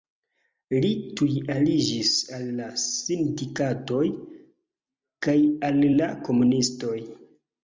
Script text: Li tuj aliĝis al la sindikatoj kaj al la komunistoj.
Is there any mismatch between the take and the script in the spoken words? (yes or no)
no